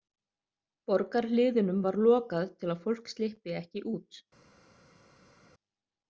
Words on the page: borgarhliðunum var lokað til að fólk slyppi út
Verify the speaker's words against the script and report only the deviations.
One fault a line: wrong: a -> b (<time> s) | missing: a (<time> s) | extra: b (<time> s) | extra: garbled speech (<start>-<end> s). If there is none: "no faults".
extra: ekki (3.6 s)